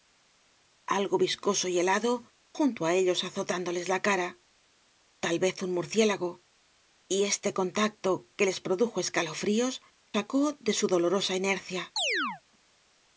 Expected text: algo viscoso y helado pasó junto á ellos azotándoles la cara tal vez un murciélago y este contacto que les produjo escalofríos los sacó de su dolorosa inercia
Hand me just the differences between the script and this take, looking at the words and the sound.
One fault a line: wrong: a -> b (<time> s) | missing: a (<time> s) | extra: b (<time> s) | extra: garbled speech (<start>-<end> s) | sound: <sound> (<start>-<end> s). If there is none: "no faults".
missing: pasó (2.1 s)
missing: los (9.7 s)
sound: chirp (12.0-12.4 s)